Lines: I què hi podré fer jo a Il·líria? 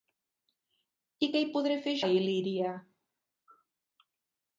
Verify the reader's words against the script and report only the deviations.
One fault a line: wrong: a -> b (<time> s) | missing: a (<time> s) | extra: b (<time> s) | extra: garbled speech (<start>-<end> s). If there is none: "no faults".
missing: jo (2.0 s)